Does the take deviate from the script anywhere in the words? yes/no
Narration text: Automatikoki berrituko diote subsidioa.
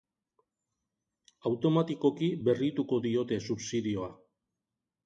no